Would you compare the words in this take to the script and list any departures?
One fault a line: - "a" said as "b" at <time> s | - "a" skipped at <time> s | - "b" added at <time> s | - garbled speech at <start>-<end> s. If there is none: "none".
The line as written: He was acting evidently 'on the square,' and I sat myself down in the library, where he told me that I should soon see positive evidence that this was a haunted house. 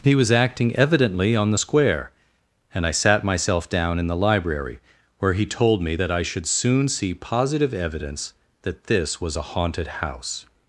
none